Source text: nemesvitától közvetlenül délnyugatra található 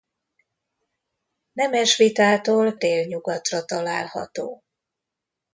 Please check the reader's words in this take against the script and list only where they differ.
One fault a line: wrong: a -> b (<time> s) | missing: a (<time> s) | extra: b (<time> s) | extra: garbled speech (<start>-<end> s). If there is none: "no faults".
missing: közvetlenül (2.8 s)